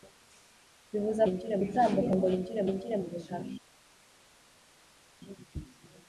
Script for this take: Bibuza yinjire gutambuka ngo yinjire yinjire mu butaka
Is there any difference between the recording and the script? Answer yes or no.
no